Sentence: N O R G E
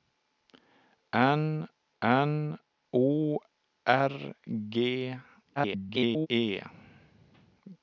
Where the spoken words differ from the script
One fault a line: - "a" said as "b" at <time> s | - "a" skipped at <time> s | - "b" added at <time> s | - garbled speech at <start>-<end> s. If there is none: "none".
- "n" added at 2.0 s
- garbled speech at 5.6-6.3 s